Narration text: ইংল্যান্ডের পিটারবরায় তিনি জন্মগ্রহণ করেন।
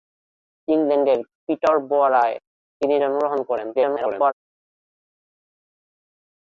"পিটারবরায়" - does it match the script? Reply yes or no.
yes